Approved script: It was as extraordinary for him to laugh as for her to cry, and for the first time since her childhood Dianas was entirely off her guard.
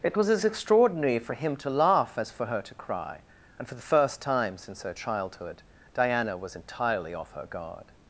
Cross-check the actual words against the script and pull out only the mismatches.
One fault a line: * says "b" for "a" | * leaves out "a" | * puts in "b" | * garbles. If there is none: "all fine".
* says "Diana" for "Dianas"